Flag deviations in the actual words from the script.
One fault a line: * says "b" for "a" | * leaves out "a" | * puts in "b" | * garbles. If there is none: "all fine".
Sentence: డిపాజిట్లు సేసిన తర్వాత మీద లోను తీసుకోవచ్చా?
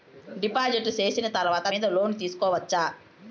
all fine